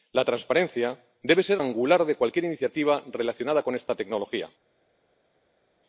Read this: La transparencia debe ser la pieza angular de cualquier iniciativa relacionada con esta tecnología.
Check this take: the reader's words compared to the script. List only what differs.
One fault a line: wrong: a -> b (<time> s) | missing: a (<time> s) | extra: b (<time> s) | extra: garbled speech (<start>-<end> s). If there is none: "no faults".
missing: la pieza (1.6 s)